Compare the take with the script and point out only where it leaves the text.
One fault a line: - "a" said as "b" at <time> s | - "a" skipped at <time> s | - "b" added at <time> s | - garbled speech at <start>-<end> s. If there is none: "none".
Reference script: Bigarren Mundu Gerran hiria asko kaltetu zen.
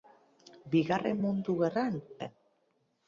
- "hiria asko kaltetu" skipped at 2.0 s